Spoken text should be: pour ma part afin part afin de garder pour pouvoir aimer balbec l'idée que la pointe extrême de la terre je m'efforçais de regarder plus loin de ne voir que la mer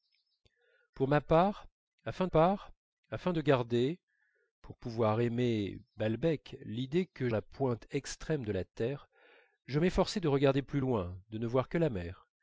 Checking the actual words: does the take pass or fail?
pass